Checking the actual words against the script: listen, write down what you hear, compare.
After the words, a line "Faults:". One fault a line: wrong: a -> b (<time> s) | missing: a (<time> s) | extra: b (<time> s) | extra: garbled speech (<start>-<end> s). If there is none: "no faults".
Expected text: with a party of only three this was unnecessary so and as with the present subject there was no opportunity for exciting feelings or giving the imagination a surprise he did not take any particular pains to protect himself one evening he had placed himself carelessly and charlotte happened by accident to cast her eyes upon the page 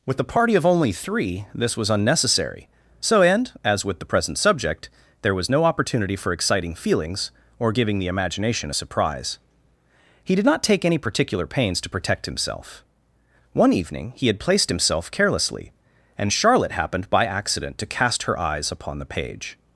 with a party of only three this was unnecessary so and as with the present subject there was no opportunity for exciting feelings or giving the imagination a surprise he did not take any particular pains to protect himself one evening he had placed himself carelessly and charlotte happened by accident to cast her eyes upon the page
Faults:
no faults